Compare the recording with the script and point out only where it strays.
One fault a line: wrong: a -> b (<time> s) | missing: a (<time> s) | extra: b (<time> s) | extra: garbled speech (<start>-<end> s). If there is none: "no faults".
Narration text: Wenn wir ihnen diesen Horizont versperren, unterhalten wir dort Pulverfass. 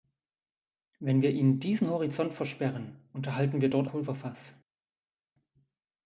no faults